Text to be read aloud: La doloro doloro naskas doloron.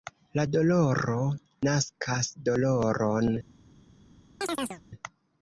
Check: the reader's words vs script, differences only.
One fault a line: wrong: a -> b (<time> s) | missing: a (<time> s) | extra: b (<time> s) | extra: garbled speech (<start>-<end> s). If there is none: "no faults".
missing: doloro (1.2 s)